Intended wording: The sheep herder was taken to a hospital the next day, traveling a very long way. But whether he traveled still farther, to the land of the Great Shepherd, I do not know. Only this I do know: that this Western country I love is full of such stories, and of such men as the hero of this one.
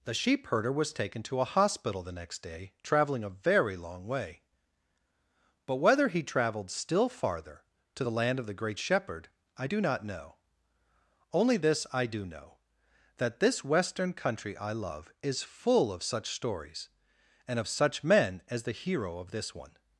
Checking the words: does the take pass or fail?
pass